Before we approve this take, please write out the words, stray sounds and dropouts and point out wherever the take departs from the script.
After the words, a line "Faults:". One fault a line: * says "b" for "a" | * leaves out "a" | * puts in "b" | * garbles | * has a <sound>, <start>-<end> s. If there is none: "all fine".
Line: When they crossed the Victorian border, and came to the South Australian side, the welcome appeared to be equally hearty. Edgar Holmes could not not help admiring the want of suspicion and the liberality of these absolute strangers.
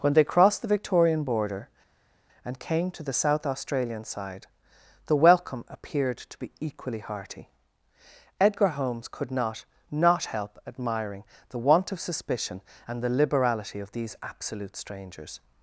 When they crossed the Victorian border, and came to the South Australian side, the welcome appeared to be equally hearty. Edgar Holmes could not not help admiring the want of suspicion and the liberality of these absolute strangers.
Faults:
all fine